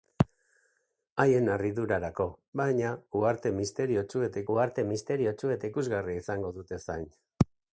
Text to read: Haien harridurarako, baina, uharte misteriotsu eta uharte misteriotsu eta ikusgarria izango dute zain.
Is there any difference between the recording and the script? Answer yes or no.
no